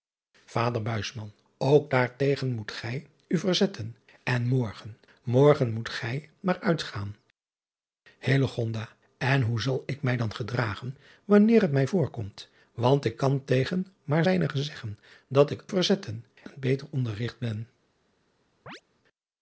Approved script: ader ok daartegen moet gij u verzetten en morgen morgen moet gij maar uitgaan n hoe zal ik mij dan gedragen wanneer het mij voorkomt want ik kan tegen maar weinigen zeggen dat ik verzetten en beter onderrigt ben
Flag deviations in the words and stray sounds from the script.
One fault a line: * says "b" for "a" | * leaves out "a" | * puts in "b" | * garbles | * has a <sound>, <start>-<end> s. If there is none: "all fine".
* has a chirp, 18.7-18.8 s